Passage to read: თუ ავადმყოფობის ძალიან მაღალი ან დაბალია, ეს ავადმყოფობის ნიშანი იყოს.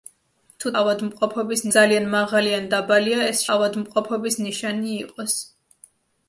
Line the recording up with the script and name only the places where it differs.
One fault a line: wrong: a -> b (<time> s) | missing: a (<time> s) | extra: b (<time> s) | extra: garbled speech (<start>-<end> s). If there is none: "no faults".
no faults